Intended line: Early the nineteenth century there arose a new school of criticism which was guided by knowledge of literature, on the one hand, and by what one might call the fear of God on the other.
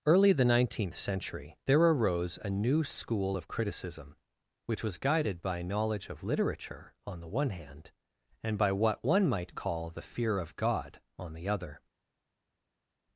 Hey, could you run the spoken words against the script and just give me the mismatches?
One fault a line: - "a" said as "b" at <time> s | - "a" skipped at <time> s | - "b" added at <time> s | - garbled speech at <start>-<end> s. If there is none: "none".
none